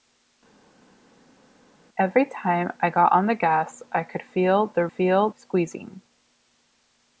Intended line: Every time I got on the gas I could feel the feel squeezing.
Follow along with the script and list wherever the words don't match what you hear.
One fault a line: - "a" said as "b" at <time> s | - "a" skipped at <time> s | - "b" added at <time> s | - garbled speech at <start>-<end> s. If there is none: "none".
none